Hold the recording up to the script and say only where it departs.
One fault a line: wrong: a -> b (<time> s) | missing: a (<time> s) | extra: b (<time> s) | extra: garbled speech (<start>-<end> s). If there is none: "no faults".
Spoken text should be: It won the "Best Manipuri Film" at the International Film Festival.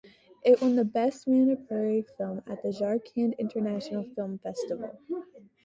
extra: Jharkhand (2.7 s)